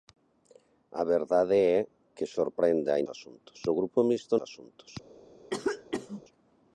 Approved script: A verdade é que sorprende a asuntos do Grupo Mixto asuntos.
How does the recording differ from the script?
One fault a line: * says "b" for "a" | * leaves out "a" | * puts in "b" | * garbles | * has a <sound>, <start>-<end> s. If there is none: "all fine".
* has a cough, 5.5-6.2 s